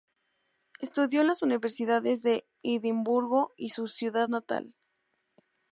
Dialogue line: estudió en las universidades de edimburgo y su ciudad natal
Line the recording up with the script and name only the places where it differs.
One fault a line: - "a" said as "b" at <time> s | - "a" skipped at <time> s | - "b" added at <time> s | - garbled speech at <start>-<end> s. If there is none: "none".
none